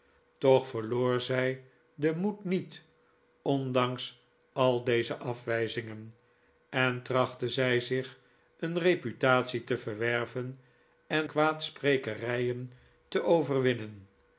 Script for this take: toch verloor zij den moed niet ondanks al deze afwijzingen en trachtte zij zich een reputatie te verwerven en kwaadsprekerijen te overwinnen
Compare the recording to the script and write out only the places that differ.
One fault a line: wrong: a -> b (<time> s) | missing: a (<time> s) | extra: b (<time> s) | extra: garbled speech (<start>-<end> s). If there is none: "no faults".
no faults